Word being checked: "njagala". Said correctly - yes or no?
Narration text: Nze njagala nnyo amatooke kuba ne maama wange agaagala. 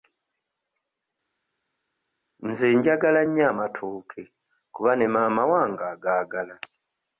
yes